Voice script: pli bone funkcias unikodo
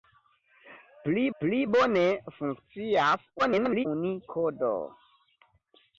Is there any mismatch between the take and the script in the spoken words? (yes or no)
yes